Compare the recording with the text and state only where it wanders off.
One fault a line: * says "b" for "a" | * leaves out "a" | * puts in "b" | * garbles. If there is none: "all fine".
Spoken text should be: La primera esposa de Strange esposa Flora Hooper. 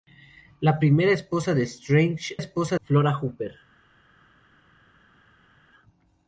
all fine